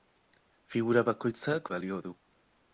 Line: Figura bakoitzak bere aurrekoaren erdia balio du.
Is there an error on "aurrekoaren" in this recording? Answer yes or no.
yes